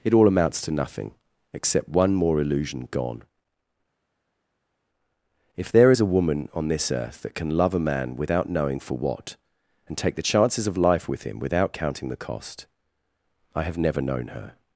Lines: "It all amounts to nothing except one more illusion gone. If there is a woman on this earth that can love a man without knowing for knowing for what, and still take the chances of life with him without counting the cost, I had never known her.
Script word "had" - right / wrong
wrong